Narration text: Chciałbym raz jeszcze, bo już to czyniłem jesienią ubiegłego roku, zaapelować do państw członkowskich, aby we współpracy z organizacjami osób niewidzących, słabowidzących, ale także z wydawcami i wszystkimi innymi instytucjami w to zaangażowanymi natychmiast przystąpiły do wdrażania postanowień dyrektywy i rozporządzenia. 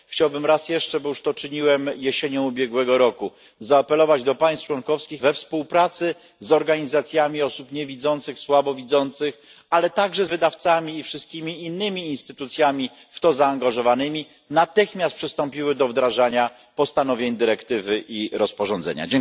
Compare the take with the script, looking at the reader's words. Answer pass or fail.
fail